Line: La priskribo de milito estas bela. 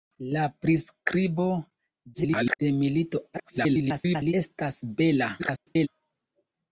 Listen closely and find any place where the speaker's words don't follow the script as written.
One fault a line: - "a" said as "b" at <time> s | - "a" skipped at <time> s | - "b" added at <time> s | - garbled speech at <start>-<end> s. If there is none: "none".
- garbled speech at 2.1-2.6 s
- garbled speech at 3.3-4.3 s
- garbled speech at 5.4-5.9 s